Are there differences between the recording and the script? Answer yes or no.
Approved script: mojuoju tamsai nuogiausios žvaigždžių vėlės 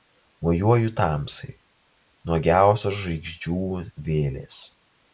no